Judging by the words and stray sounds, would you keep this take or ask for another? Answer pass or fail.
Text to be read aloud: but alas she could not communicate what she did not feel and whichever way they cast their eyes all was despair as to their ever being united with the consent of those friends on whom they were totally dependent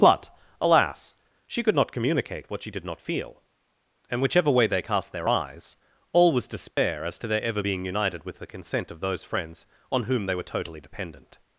fail